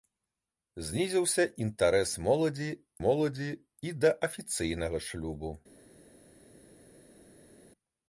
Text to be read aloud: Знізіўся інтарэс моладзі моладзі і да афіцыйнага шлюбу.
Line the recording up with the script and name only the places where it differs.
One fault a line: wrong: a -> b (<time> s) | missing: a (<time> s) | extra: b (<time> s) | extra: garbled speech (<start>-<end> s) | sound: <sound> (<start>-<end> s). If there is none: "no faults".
no faults